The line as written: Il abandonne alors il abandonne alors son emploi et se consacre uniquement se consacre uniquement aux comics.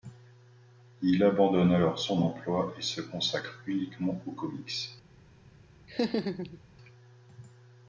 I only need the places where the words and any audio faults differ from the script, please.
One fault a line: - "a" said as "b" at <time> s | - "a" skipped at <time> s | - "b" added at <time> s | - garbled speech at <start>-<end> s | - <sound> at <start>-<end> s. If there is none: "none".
- "il abandonne alors" skipped at 2.0 s
- "se consacre uniquement" skipped at 4.2 s
- laugh at 5.9-6.6 s